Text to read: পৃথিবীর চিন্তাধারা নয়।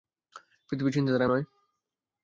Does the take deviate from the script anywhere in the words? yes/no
no